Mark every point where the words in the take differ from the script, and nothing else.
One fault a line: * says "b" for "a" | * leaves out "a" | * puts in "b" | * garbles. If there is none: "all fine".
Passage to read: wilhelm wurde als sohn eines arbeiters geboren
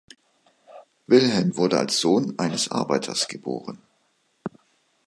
all fine